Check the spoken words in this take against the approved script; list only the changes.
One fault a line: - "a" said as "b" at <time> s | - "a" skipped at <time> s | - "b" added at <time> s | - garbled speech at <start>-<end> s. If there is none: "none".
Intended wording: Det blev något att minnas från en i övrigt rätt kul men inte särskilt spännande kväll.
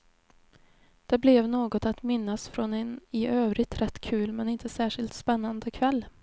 none